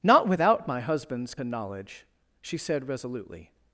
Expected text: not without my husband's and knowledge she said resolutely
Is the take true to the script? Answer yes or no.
yes